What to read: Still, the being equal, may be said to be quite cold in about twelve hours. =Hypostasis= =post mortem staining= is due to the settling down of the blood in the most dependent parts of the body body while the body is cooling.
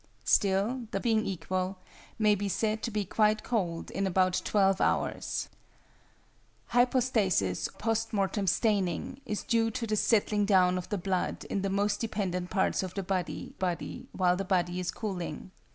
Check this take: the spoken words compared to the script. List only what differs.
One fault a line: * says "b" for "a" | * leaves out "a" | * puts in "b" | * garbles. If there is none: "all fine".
all fine